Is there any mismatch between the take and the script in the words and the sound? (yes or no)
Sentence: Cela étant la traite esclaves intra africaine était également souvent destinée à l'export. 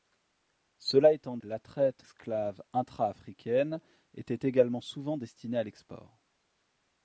no